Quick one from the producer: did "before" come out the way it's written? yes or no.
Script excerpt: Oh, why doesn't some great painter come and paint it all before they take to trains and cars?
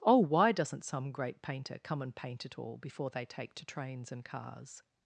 yes